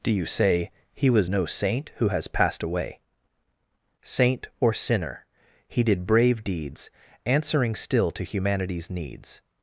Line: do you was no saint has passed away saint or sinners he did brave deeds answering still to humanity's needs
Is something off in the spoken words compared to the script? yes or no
yes